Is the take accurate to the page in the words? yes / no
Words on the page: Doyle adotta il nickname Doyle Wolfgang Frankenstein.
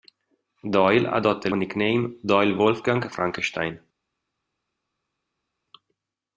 yes